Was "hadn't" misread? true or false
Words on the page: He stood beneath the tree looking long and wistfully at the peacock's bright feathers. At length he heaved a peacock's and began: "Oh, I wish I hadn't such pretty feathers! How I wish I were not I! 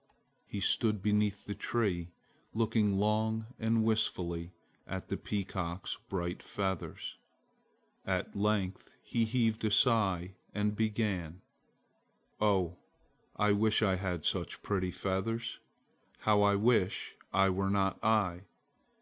true